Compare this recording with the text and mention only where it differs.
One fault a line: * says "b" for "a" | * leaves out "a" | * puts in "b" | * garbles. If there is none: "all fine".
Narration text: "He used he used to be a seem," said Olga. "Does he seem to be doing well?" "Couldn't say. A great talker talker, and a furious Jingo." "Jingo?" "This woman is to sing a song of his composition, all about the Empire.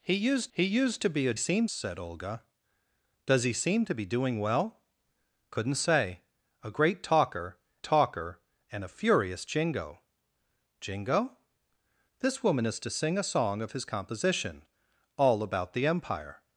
all fine